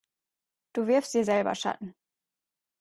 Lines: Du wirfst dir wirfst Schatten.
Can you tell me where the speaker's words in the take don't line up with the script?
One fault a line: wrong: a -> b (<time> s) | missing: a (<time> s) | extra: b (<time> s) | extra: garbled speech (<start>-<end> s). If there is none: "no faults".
wrong: wirfst -> selber (1.2 s)